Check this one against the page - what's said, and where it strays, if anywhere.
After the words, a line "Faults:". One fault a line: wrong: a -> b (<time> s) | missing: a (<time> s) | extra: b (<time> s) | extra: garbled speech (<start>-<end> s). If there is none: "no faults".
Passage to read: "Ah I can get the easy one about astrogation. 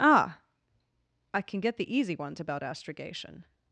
"Ah I can get the easy ones about astrogation.
Faults:
wrong: one -> ones (2.1 s)